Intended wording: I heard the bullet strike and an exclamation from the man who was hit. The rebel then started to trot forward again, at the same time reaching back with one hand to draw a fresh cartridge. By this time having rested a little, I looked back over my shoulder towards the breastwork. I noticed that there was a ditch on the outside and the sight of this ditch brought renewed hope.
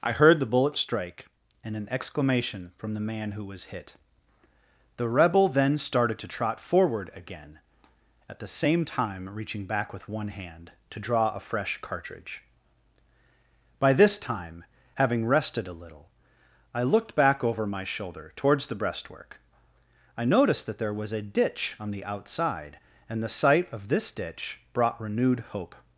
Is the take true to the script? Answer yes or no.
yes